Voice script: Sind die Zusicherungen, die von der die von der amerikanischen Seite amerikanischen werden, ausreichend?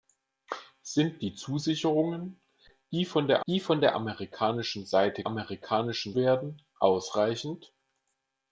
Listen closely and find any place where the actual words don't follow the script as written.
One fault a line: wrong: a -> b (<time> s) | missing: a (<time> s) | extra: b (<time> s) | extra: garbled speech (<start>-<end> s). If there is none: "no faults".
no faults